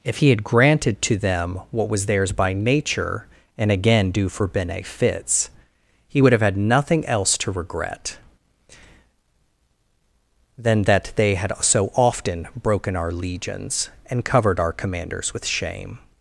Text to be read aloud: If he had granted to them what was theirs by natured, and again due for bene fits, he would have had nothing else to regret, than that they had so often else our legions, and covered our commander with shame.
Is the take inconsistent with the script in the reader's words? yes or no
yes